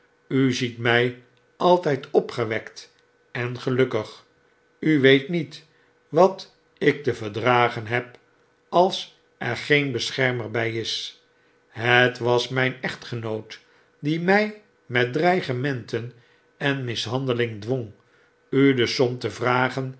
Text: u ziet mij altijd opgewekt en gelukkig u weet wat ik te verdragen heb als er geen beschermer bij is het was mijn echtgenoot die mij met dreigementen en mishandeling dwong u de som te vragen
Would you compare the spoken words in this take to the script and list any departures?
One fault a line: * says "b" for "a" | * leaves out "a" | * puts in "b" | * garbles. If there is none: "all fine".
* puts in "niet"